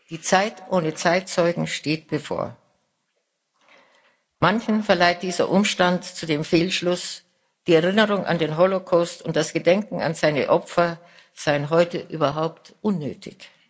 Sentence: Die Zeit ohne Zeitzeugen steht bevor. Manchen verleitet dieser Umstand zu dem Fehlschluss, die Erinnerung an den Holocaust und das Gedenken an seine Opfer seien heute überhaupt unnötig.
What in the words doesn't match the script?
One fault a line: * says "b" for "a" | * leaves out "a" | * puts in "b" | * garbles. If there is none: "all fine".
all fine